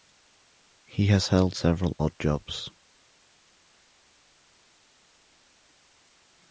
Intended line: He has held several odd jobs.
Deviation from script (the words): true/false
false